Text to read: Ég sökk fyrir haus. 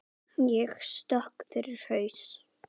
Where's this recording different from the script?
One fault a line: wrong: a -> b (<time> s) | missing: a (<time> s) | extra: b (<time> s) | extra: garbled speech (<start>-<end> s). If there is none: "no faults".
no faults